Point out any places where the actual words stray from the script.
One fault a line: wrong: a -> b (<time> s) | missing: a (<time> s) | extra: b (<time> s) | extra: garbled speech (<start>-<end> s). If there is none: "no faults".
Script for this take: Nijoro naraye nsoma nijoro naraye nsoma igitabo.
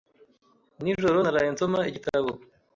missing: nijoro naraye nsoma (1.8 s)